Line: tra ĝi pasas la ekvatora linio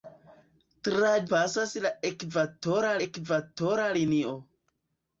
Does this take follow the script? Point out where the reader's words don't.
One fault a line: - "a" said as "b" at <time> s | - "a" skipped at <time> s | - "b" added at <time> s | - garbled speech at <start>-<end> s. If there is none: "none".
- "ĝi" skipped at 1.1 s
- "ekvatora" added at 3.1 s